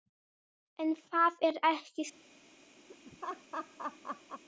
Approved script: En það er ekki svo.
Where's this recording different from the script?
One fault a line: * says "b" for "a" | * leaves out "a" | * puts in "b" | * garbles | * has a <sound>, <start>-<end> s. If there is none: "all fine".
* has a laugh, 2.9-4.4 s